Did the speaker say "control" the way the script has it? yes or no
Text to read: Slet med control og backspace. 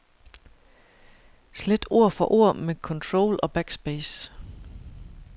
yes